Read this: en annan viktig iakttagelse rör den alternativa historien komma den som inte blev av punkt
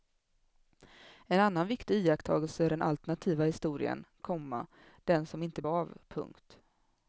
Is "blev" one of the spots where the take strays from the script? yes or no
yes